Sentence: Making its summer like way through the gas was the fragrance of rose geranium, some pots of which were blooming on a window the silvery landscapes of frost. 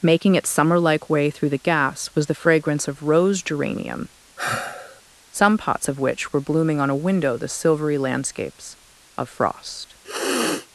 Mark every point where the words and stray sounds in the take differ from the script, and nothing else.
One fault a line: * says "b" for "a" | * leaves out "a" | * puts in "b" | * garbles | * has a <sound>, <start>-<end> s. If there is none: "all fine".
* has a sigh, 4.4-5.0 s
* has a sniff, 10.0-10.7 s